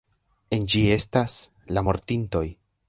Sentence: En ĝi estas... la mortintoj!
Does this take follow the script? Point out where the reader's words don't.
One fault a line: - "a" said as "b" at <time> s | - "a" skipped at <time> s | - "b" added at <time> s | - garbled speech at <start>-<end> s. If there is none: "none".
none